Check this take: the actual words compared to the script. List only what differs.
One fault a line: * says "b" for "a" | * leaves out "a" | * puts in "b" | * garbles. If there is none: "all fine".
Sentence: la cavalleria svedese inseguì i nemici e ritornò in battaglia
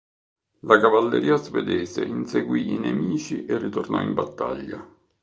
all fine